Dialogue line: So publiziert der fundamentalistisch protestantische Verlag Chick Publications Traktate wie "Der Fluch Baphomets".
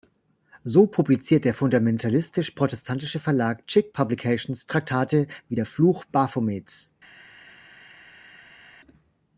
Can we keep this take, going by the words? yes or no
yes